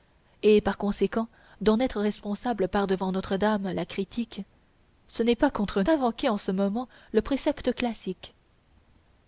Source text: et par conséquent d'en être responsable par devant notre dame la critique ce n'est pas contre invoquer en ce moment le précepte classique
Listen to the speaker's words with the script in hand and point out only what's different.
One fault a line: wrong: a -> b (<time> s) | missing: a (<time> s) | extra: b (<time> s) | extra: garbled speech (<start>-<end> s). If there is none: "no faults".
no faults